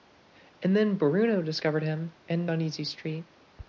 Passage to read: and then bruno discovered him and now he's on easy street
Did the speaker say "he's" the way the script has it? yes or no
no